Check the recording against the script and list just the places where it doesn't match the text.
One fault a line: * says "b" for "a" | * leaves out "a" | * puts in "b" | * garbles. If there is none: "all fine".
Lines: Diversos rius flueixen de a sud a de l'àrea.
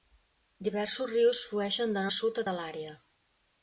all fine